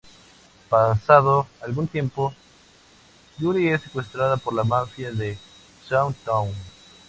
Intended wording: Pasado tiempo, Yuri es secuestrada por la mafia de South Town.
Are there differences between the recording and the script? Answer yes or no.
yes